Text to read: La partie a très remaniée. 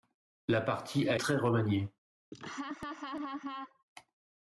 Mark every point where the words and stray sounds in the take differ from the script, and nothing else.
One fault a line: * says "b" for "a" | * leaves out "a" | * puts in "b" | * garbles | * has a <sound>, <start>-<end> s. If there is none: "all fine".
* has a laugh, 2.3-3.8 s